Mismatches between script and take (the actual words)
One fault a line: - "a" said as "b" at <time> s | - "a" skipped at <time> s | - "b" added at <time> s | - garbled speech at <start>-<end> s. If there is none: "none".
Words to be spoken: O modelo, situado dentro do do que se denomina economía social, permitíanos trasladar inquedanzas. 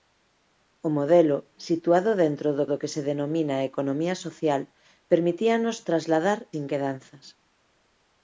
none